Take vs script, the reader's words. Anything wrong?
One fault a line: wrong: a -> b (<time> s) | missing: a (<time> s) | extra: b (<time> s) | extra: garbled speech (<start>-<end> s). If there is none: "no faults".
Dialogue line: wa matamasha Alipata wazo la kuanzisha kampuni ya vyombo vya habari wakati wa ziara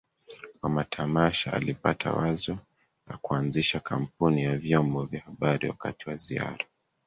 no faults